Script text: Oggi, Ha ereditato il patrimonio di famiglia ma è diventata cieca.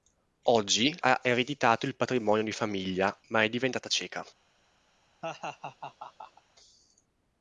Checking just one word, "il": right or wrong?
right